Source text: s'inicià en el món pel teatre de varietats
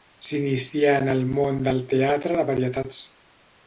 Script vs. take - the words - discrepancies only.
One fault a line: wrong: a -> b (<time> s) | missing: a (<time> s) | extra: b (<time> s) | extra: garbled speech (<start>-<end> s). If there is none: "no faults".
wrong: pel -> del (1.7 s)